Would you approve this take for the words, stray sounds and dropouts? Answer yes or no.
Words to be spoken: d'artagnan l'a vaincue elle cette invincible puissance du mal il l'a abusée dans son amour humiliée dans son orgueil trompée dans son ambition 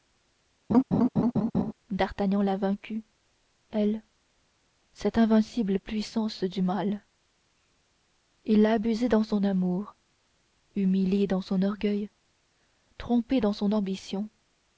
no